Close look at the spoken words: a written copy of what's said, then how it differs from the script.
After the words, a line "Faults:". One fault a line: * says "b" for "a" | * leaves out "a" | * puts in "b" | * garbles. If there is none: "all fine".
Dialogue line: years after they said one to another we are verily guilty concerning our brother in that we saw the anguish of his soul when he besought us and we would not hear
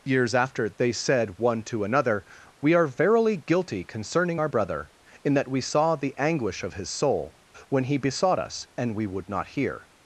years after they said one to another we are verily guilty concerning our brother in that we saw the anguish of his soul when he besought us and we would not hear
Faults:
all fine